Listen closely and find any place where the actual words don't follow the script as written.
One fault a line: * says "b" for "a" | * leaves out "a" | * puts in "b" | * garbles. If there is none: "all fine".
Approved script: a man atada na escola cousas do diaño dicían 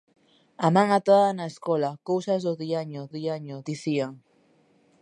* puts in "diaño"